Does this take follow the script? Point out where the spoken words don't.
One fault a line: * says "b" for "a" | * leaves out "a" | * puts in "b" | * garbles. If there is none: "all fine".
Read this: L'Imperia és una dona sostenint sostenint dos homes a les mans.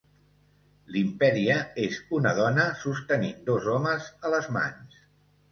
* leaves out "sostenint"